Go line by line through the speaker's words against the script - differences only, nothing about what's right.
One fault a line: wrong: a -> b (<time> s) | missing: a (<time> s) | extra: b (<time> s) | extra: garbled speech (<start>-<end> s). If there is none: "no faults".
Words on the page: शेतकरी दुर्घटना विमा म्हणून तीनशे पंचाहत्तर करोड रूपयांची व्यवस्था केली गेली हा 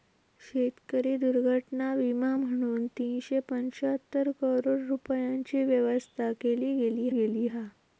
extra: गेली (7.1 s)